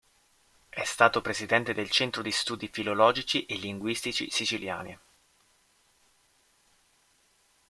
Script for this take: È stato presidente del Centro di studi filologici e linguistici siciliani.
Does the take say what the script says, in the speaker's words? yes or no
yes